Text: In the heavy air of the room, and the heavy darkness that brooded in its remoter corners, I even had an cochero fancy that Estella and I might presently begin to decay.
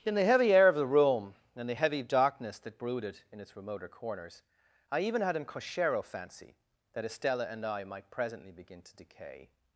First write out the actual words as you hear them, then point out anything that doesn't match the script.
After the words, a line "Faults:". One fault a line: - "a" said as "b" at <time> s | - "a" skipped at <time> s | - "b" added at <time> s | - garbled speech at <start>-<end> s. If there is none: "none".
In the heavy air of the room, and the heavy darkness that brooded in its remoter corners, I even had an cochero fancy that Estella and I might presently begin to decay.
Faults:
none